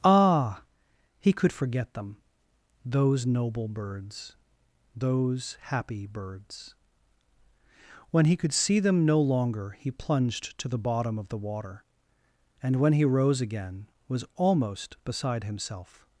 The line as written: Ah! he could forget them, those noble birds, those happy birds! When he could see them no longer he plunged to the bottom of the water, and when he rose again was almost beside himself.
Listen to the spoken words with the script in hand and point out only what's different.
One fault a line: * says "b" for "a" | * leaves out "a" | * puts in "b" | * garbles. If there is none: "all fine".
all fine